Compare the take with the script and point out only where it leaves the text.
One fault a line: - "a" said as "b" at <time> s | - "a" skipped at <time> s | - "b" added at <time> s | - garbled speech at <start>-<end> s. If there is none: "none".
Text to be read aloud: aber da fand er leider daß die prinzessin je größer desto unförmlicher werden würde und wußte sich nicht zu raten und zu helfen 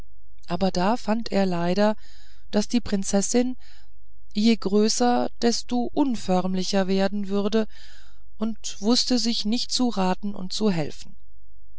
none